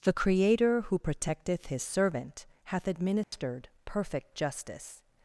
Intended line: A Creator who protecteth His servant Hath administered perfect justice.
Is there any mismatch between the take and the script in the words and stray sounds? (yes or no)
yes